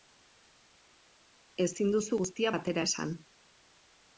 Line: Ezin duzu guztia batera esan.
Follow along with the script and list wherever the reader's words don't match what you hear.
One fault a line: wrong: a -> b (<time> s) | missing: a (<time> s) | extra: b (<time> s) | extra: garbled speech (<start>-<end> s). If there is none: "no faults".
no faults